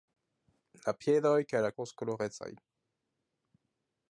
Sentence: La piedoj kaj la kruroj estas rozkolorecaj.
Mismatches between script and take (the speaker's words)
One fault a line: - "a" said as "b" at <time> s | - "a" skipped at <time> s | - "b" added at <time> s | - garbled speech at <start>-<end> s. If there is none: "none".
- "kruroj estas" skipped at 1.7 s